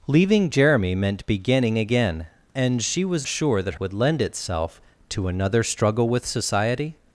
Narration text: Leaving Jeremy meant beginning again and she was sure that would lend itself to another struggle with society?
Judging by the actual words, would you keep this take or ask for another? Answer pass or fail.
pass